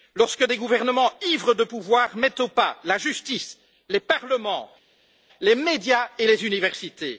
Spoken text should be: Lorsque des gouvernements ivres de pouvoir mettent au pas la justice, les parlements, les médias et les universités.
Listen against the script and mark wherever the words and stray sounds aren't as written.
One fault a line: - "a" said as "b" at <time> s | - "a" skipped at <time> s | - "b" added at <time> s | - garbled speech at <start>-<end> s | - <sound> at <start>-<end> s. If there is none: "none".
none